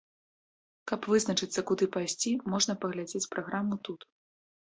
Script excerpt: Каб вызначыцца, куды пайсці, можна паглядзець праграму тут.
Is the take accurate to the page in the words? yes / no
yes